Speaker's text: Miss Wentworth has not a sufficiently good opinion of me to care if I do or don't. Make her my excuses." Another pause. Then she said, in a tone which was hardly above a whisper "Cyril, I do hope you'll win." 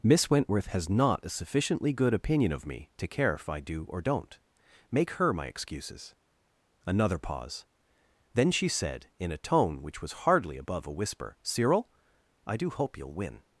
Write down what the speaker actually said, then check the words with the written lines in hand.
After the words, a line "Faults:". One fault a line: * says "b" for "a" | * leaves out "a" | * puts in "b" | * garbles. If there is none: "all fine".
Miss Wentworth has not a sufficiently good opinion of me to care if I do or don't. Make her my excuses." Another pause. Then she said, in a tone which was hardly above a whisper "Cyril, I do hope you'll win."
Faults:
all fine